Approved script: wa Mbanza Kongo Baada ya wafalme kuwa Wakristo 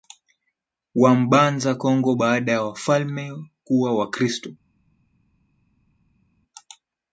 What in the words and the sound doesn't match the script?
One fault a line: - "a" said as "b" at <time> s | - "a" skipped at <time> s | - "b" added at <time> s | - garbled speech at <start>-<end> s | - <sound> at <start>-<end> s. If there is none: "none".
none